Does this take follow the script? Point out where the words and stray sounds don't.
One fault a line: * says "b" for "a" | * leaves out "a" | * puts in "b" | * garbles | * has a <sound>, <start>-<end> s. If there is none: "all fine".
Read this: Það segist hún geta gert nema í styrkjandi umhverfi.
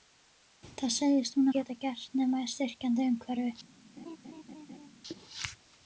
* has a laugh, 4.0-4.9 s